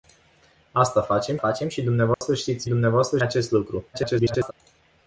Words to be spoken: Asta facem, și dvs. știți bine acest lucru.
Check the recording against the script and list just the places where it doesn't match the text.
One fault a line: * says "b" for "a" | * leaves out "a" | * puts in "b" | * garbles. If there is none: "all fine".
* puts in "facem"
* says "dvs" for "bine"
* garbles